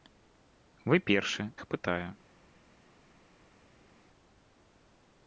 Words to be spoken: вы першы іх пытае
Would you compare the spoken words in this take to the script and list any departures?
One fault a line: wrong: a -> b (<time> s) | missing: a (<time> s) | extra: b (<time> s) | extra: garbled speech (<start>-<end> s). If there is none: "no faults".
no faults